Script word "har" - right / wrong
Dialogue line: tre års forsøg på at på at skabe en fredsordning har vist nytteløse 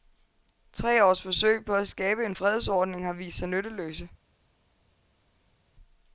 right